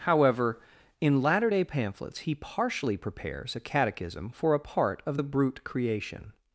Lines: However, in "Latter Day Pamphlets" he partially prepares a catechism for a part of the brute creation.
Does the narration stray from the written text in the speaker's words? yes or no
no